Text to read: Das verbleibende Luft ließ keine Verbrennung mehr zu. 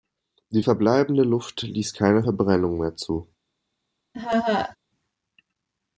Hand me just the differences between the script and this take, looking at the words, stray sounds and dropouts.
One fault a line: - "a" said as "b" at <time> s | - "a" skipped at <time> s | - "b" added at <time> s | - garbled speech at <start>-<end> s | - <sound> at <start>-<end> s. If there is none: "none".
- "Das" said as "Die" at 0.5 s
- laugh at 4.1-4.8 s